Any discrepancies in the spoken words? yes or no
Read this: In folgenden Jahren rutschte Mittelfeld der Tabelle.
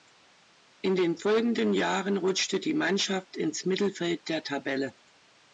yes